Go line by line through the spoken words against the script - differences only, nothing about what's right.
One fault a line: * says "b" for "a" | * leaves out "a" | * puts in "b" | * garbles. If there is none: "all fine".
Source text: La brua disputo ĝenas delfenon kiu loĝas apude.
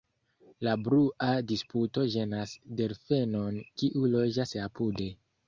all fine